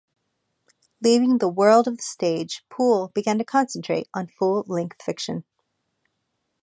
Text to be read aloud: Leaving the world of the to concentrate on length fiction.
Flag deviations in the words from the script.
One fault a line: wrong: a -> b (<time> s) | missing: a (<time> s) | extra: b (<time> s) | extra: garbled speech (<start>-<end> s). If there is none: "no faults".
extra: stage Poole began (2.0 s)
extra: full (4.2 s)